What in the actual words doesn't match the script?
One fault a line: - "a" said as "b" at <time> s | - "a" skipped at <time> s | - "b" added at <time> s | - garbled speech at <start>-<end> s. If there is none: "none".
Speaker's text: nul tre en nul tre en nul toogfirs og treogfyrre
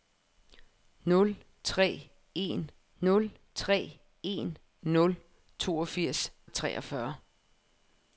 none